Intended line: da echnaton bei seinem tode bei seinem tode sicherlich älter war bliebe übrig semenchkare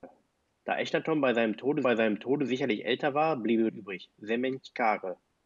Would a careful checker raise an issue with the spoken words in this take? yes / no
no